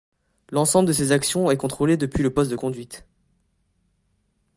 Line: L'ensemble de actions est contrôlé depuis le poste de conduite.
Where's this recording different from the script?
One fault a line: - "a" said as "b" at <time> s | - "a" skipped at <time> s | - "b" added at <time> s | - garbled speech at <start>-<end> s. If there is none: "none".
- "ces" added at 0.9 s